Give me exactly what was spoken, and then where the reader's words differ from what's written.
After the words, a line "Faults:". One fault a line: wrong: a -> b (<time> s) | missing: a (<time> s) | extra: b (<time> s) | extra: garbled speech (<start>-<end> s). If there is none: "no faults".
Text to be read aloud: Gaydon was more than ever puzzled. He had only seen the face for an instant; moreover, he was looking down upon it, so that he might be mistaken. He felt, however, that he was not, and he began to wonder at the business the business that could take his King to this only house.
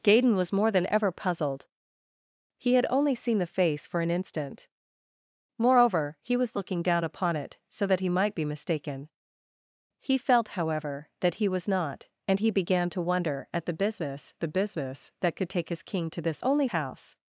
Gaydon was more than ever puzzled. He had only seen the face for an instant; moreover, he was looking down upon it, so that he might be mistaken. He felt, however, that he was not, and he began to wonder at the business the business that could take his King to this only house.
Faults:
no faults